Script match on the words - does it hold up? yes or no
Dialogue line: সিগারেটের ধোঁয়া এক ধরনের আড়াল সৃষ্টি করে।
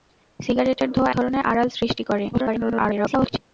no